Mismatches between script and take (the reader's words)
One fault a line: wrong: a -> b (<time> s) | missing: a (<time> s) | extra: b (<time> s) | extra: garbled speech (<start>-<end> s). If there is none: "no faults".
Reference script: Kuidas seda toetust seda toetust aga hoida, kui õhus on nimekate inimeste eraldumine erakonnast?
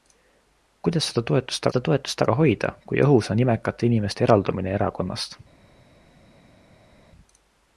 no faults